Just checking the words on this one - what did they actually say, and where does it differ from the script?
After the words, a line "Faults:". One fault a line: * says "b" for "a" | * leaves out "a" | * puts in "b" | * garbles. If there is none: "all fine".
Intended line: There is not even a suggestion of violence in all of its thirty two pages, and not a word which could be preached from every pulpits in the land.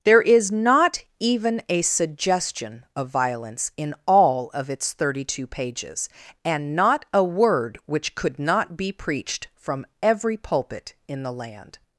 There is not even a suggestion of violence in all of its thirty two pages, and not a word which could not be preached from every pulpit in the land.
Faults:
* puts in "not"
* says "pulpit" for "pulpits"